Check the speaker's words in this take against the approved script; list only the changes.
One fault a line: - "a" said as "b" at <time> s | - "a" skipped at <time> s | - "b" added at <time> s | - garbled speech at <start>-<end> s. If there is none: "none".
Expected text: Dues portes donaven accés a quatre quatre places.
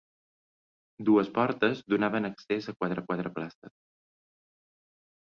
none